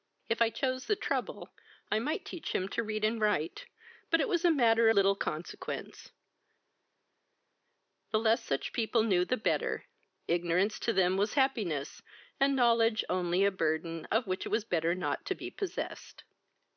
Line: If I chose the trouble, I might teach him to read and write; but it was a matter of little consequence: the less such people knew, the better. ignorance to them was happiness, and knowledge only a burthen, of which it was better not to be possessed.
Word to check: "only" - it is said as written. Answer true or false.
true